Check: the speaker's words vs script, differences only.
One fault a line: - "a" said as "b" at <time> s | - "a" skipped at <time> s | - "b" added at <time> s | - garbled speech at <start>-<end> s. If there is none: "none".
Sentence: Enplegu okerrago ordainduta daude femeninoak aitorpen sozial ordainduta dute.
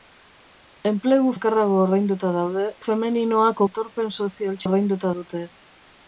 none